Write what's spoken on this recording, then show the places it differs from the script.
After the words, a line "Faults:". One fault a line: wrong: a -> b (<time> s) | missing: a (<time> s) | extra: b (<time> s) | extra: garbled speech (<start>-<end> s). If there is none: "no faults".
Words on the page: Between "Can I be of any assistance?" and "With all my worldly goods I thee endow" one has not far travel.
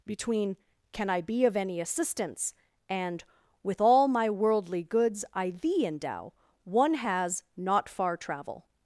Between "Can I be of any assistance?" and "With all my worldly goods I thee endow" one has not far travel.
Faults:
no faults